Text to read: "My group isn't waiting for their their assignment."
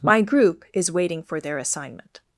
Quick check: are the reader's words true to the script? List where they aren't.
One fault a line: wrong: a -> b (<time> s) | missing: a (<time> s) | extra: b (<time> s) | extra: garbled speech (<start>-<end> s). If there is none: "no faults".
wrong: isn't -> is (0.7 s)
missing: their (1.6 s)